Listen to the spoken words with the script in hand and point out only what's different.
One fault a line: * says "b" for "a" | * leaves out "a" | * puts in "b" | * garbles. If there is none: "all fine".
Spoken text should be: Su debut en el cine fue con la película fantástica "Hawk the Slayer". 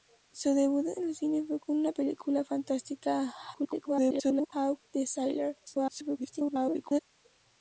* garbles
* garbles